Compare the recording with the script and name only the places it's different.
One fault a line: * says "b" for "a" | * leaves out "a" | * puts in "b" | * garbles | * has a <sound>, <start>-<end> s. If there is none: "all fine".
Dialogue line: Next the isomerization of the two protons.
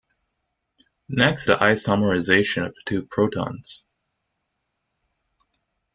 all fine